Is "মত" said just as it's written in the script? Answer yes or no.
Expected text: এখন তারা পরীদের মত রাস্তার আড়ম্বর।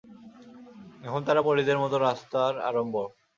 yes